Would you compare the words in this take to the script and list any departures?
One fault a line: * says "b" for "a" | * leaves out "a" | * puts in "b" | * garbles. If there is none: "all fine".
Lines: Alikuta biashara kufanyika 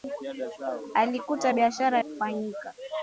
all fine